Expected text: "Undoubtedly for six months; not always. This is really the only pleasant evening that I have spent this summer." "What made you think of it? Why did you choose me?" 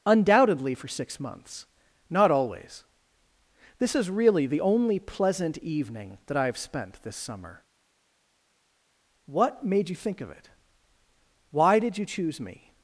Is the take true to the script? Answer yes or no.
yes